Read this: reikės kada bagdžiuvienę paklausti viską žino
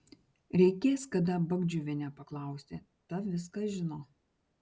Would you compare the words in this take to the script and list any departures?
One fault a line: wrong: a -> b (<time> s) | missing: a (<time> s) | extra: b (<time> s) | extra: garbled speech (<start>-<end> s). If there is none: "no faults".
extra: ta (3.1 s)